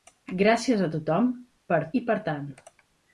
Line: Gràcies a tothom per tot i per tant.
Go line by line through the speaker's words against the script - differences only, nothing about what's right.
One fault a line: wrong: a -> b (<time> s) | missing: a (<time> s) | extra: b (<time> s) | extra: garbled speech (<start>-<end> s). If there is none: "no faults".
missing: tot (1.8 s)